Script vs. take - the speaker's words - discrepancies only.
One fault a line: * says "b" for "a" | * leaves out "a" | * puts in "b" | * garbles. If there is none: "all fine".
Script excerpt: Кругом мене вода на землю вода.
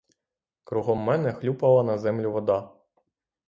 * says "хлюпала" for "вода"